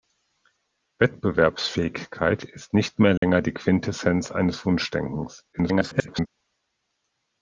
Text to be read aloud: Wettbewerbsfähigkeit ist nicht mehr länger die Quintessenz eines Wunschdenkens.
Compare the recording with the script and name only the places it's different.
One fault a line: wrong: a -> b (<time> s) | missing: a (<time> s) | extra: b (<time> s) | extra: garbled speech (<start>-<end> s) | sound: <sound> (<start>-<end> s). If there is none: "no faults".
sound: dropout (3.2-3.2 s)
extra: garbled speech (5.5-6.3 s)